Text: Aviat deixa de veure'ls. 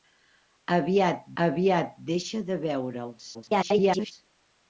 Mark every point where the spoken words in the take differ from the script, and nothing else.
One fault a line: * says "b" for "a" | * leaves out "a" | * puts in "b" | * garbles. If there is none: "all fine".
* puts in "aviat"
* garbles